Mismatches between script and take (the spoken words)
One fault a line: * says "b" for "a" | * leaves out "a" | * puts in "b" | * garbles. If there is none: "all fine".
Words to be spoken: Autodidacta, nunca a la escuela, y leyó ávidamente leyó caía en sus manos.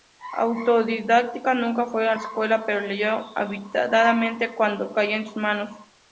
* puts in "fue"
* says "pero" for "y"
* says "cuanto" for "leyó"